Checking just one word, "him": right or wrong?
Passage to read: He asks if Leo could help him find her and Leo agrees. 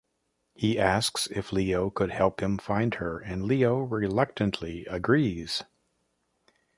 right